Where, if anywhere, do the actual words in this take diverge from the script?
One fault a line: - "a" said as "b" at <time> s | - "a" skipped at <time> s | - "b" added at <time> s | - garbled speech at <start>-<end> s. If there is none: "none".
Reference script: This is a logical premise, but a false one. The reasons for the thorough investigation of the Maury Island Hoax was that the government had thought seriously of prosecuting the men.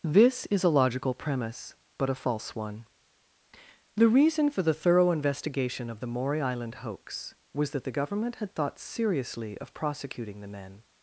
- "reasons" said as "reason" at 4.1 s